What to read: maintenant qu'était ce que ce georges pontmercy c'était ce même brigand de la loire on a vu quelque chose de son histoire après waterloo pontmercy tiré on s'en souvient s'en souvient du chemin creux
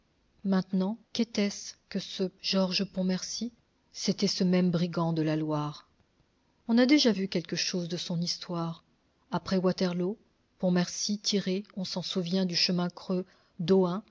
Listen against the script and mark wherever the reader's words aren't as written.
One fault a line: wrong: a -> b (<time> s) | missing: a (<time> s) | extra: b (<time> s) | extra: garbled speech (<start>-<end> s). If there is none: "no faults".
extra: déjà (6.9 s)
missing: s'en souvient (12.4 s)